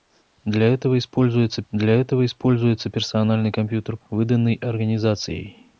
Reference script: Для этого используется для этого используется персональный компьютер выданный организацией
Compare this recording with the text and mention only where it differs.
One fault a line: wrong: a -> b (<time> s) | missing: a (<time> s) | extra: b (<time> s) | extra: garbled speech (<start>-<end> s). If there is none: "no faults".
no faults